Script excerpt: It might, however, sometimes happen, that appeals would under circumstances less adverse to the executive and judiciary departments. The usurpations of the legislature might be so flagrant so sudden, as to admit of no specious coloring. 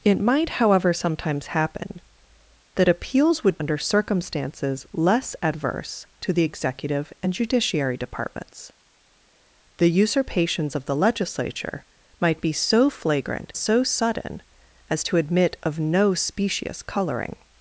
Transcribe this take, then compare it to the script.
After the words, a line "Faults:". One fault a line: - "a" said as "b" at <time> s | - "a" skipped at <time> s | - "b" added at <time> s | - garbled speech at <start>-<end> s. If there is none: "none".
It might, however, sometimes happen, that appeals would under circumstances less adverse to the executive and judiciary departments. The usurpations of the legislature might be so flagrant so sudden, as to admit of no specious coloring.
Faults:
none